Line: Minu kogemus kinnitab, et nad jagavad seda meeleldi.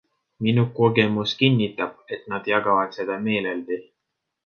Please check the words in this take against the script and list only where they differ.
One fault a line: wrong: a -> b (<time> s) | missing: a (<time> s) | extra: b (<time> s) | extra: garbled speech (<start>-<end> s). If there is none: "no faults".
no faults